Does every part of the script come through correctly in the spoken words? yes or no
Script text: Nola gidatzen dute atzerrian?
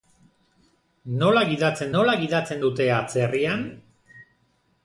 no